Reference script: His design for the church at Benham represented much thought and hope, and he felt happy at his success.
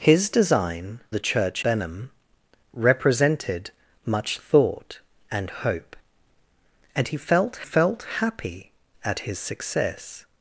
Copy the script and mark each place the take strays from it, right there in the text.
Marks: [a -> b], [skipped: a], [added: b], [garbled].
His design [skipped: for] the church [skipped: at] Benham represented much thought and hope, and he felt [added: felt] happy at his success.